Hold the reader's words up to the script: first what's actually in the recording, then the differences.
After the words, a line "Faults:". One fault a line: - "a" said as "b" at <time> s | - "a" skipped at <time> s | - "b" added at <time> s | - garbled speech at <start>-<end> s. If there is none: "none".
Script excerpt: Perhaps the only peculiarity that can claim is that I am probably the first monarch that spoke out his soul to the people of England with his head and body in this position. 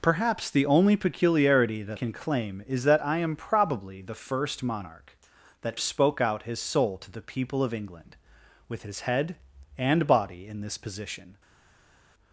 Perhaps the only peculiarity that can claim is that I am probably the first monarch that spoke out his soul to the people of England with his head and body in this position.
Faults:
none